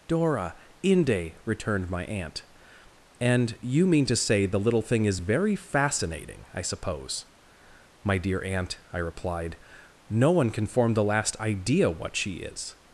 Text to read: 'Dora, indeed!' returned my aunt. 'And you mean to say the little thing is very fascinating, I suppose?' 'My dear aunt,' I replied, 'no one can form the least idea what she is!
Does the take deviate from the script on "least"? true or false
true